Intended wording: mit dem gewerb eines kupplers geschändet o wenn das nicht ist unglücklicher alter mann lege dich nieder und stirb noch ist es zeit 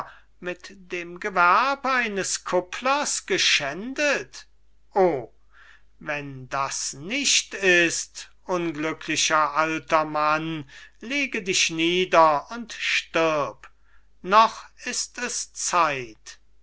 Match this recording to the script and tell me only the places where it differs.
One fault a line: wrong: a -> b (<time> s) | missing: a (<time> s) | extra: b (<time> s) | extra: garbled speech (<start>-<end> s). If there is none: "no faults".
no faults